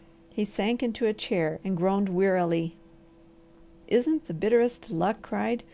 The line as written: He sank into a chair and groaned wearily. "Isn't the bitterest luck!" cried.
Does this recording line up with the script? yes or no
yes